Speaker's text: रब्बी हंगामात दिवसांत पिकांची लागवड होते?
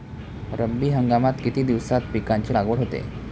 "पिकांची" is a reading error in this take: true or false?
false